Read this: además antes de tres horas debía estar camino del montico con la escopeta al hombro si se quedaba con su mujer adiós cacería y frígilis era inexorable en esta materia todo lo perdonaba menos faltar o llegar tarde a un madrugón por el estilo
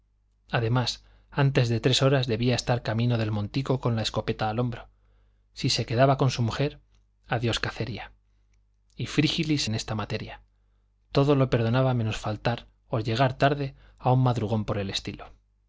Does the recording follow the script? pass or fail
fail